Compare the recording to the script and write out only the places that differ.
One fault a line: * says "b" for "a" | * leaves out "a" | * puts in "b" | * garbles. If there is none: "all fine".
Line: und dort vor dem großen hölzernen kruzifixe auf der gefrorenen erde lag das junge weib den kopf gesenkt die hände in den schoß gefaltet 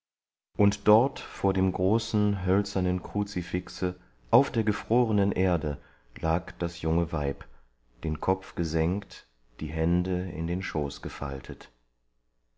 all fine